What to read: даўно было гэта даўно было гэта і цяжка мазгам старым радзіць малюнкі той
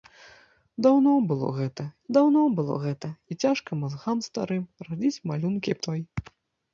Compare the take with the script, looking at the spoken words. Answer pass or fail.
pass